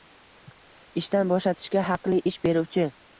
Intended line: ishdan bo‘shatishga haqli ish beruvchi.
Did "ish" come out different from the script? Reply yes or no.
no